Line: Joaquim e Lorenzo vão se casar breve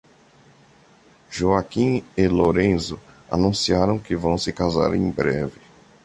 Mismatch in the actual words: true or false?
true